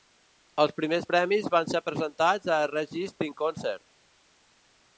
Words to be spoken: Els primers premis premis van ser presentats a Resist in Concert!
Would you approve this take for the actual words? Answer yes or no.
no